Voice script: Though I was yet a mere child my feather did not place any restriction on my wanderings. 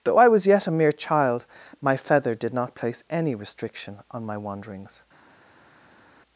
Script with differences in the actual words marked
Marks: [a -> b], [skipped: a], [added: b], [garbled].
Though I was yet a mere child my feather did not place any restriction on my wanderings.